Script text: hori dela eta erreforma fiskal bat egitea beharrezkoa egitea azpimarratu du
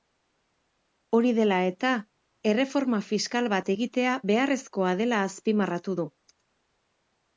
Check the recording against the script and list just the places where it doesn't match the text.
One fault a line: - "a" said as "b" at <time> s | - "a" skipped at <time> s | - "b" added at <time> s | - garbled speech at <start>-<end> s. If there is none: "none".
- "egitea" said as "dela" at 5.0 s